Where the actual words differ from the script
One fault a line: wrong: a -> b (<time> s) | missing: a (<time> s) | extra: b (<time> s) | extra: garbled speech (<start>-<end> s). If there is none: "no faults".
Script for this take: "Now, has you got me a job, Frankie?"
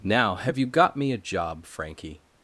wrong: has -> have (0.3 s)